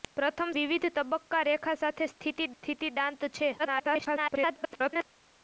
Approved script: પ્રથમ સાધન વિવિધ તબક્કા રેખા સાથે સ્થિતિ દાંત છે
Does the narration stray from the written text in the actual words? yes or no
yes